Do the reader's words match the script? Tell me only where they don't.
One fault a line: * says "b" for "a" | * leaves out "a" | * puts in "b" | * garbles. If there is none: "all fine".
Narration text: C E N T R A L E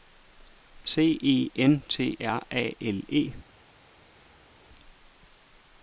all fine